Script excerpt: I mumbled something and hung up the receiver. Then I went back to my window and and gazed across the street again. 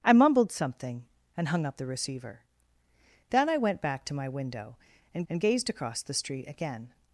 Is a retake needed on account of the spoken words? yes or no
no